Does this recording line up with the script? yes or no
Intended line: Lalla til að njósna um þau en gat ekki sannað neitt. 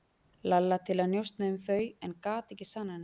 yes